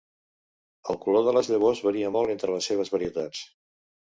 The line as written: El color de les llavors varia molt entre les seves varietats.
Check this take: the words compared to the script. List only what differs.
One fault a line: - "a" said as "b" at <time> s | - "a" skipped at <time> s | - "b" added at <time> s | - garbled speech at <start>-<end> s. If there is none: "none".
none